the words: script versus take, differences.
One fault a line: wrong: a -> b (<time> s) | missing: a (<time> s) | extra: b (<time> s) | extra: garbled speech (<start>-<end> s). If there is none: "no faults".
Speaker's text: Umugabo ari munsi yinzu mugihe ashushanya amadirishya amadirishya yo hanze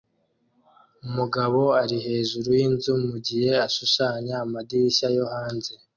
wrong: munsi -> hejuru (2.1 s)
missing: amadirishya (5.1 s)